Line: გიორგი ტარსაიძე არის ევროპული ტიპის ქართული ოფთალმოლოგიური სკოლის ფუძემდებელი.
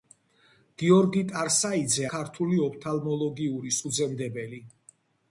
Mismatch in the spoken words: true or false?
true